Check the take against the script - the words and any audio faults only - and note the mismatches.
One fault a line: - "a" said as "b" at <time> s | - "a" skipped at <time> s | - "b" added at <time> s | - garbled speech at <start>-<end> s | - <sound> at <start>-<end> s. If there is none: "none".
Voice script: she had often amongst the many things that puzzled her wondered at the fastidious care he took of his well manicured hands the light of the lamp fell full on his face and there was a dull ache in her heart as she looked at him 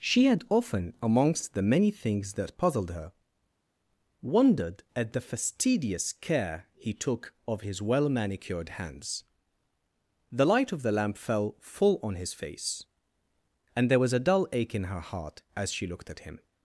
none